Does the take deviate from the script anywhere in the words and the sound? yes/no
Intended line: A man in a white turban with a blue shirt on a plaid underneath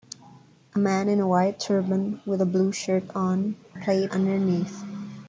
no